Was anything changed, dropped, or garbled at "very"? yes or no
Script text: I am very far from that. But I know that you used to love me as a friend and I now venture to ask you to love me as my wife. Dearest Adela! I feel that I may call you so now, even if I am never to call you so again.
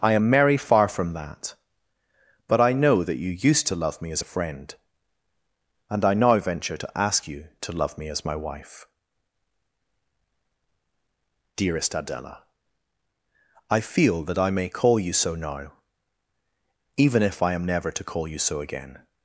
yes